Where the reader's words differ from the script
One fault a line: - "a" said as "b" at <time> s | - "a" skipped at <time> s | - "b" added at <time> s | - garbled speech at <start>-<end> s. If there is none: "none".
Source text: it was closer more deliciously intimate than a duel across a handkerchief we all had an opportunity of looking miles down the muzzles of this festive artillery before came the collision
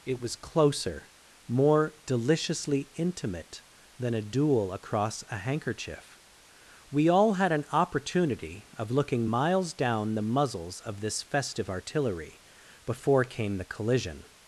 none